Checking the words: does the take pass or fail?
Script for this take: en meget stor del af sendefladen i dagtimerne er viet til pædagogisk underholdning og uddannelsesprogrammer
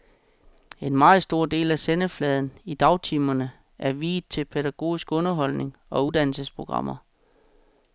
pass